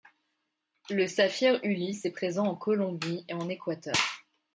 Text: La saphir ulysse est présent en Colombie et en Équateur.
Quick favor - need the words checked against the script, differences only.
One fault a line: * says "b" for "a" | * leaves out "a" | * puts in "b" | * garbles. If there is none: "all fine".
* says "Le" for "La"